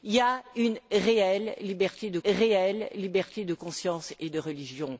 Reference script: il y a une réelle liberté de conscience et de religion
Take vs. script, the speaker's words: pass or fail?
fail